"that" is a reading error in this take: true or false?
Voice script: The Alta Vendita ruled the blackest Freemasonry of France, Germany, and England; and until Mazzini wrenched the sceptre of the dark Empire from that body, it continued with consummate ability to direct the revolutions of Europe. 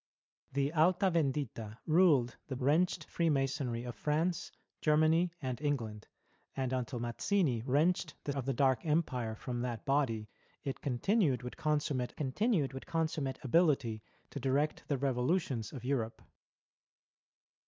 false